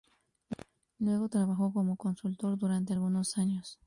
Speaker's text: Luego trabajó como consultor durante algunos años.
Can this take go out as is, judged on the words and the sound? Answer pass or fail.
pass